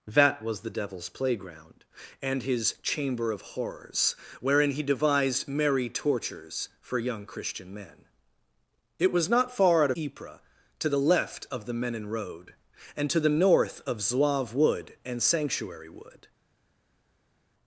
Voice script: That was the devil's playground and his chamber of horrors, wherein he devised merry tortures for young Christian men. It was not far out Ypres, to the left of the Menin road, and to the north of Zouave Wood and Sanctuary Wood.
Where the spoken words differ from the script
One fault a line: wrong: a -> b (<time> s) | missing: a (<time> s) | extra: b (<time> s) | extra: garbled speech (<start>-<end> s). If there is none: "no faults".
no faults